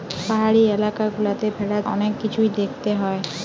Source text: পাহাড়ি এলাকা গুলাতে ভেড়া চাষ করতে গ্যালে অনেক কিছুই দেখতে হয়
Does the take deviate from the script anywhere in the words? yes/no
yes